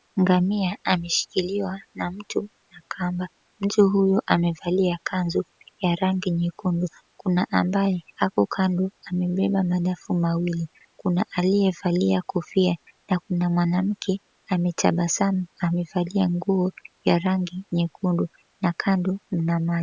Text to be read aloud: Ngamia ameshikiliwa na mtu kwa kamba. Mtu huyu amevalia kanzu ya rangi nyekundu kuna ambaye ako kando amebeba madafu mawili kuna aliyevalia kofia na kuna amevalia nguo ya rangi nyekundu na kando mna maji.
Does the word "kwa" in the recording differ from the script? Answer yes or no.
yes